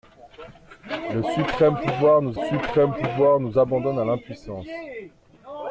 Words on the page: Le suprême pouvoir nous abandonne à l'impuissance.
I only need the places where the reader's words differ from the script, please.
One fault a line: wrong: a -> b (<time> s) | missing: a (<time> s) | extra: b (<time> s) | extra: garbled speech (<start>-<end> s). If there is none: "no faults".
extra: suprême pouvoir nous (2.3 s)